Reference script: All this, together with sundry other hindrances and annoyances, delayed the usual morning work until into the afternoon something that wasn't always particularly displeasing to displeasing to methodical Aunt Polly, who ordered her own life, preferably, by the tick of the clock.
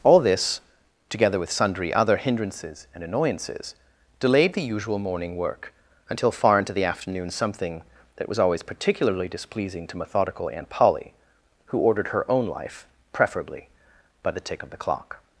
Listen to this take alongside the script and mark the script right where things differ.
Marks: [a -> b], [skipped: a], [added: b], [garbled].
All this, together with sundry other hindrances and annoyances, delayed the usual morning work until [added: far] into the afternoon something that [wasn't -> was] always particularly displeasing to [skipped: displeasing to] methodical Aunt Polly, who ordered her own life, preferably, by the tick of the clock.